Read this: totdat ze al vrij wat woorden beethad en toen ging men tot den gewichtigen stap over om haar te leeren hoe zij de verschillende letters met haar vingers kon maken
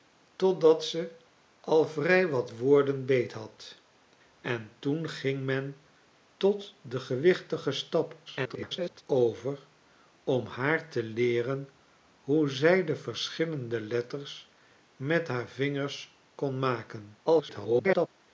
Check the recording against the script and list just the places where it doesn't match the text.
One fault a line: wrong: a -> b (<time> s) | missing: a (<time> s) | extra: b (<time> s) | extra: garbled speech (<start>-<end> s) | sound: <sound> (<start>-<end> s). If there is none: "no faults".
extra: garbled speech (8.3-9.0 s)
extra: garbled speech (17.3-18.1 s)